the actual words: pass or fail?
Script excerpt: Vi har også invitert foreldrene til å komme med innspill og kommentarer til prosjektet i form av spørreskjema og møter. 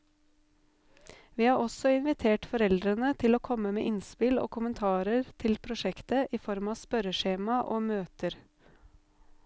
pass